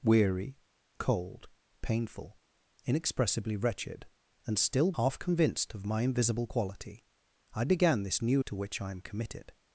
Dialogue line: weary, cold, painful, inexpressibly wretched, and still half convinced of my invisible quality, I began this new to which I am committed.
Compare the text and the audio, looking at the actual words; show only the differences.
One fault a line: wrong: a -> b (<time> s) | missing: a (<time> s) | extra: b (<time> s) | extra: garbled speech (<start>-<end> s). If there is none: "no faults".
no faults